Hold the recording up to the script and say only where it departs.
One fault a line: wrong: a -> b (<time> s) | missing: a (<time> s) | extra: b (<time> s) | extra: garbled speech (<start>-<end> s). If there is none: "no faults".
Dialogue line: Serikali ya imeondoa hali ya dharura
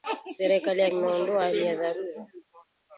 no faults